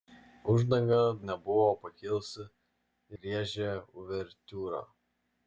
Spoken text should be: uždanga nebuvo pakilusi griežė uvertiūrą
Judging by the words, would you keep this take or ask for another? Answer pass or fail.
pass